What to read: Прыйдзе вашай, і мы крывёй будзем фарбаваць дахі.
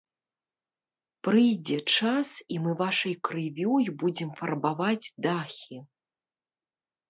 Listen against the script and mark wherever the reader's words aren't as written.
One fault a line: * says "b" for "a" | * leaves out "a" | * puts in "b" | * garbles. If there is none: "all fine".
* says "час" for "вашай"
* puts in "вашай"